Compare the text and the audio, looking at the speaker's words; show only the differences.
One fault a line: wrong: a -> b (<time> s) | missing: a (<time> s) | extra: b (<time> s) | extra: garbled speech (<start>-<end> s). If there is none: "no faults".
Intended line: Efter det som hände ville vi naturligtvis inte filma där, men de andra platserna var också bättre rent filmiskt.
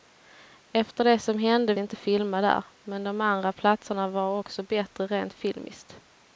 missing: ville vi naturligtvis (1.7 s)